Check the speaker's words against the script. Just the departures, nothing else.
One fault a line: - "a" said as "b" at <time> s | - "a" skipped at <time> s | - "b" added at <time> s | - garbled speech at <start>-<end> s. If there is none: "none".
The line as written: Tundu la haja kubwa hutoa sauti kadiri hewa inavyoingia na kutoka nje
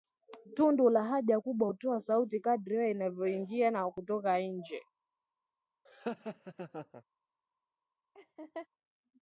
none